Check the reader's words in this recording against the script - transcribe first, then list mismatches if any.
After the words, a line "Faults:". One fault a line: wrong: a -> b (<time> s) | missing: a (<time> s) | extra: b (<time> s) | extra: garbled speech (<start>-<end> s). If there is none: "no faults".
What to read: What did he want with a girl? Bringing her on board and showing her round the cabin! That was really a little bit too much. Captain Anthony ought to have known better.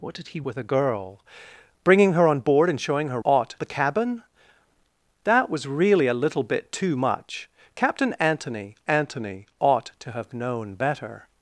What did he with a girl? Bringing her on board and showing her ought the cabin! That was really a little bit too much. Captain Anthony Anthony ought to have known better.
Faults:
missing: want (0.4 s)
wrong: round -> ought (3.2 s)
extra: Anthony (8.9 s)